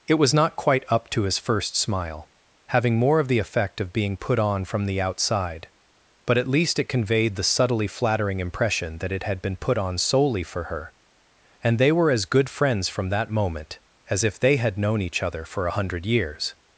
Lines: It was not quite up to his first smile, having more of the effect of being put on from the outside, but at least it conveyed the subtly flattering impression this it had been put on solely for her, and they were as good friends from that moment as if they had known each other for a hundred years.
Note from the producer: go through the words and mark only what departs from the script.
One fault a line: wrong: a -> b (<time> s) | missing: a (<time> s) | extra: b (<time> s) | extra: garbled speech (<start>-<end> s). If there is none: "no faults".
wrong: this -> that (9.0 s)